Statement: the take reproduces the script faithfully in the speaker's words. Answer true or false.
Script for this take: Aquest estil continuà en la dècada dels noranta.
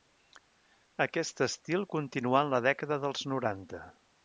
true